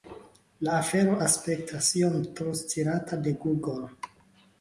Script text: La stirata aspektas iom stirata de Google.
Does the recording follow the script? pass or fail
fail